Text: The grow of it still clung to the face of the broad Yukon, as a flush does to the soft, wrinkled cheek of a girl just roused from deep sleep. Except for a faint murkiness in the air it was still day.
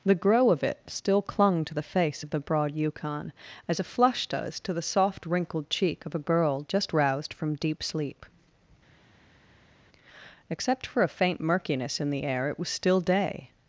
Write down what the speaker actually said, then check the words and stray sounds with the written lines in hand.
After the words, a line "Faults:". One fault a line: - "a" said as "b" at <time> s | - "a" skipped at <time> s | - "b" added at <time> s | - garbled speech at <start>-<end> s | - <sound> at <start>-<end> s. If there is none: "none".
The grow of it still clung to the face of the broad Yukon, as a flush does to the soft, wrinkled cheek of a girl just roused from deep sleep. Except for a faint murkiness in the air it was still day.
Faults:
none